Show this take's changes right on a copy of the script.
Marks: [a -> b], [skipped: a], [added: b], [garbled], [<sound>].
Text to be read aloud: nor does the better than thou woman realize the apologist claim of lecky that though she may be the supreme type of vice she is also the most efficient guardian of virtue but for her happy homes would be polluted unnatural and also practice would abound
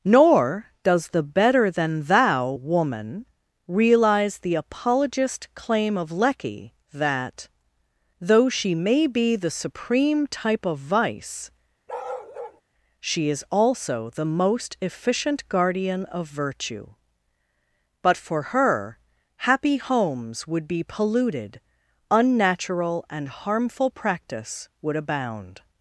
nor does the better than thou woman realize the apologist claim of lecky that though she may be the supreme type of vice [bark] she is also the most efficient guardian of virtue but for her happy homes would be polluted unnatural and [also -> harmful] practice would abound